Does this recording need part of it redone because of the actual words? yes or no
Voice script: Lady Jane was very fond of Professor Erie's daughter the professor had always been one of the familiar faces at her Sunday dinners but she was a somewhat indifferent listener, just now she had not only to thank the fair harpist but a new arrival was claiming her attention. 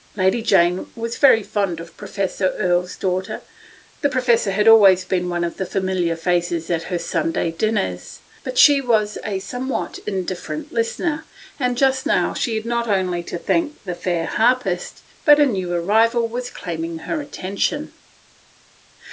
yes